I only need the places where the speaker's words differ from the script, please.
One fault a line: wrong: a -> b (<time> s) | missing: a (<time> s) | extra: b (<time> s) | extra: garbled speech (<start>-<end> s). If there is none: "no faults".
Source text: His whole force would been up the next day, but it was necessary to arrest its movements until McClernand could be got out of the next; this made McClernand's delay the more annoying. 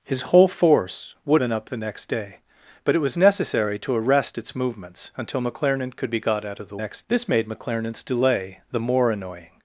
no faults